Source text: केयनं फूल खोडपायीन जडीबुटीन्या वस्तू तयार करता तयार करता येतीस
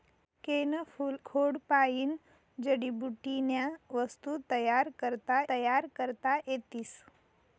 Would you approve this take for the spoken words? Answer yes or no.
yes